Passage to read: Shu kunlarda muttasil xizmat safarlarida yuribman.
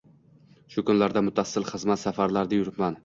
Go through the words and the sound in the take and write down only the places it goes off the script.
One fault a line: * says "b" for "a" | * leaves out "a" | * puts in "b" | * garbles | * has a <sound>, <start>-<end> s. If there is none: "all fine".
all fine